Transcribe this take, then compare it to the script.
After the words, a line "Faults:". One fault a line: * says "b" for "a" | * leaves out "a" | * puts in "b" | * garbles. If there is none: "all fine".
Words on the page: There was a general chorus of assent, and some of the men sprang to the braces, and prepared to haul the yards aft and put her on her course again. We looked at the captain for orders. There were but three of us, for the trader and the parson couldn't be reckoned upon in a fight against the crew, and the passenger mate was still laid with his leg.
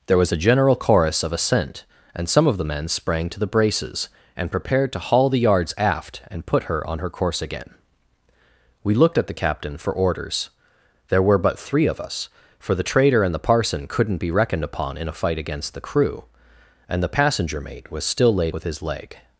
There was a general chorus of assent, and some of the men sprang to the braces, and prepared to haul the yards aft and put her on her course again. We looked at the captain for orders. There were but three of us, for the trader and the parson couldn't be reckoned upon in a fight against the crew, and the passenger mate was still laid with his leg.
Faults:
all fine